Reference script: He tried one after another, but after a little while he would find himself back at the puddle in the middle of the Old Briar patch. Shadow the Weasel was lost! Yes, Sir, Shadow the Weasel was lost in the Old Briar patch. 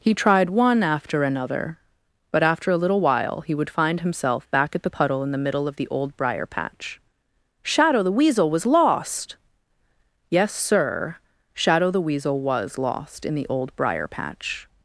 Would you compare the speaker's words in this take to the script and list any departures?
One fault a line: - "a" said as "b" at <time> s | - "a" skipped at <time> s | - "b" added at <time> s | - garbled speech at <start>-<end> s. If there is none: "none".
none